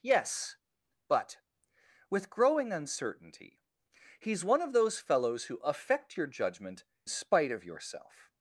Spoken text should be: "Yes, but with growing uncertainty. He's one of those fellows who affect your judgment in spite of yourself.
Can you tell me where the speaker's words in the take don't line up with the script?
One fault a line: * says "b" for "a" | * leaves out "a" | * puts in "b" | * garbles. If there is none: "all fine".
* leaves out "in"